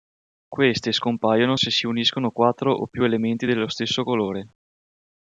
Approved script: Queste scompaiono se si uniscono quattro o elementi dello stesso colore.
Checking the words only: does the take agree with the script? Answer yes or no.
no